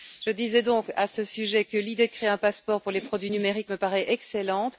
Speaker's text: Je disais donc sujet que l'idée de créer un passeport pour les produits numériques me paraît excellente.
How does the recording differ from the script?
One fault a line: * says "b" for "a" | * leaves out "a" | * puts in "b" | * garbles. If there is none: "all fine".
* puts in "à ce"